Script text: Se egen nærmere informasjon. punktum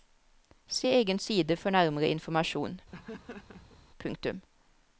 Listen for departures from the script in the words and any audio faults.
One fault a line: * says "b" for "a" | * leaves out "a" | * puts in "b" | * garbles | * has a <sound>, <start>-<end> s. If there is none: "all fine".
* puts in "side for"
* has a laugh, 2.9-3.8 s